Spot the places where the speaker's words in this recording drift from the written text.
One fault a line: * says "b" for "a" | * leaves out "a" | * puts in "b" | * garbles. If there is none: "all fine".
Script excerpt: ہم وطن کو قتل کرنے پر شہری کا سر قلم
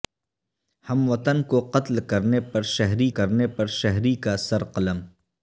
* puts in "کرنے پر شہری"